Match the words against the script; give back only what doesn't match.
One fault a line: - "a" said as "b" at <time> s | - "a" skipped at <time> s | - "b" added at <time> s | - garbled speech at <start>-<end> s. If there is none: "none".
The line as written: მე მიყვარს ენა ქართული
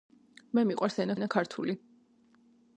- "ენა" added at 1.2 s